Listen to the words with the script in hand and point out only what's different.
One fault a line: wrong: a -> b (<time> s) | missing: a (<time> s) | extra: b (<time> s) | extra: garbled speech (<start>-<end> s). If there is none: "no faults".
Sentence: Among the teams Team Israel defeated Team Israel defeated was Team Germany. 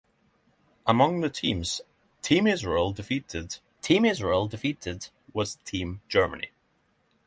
no faults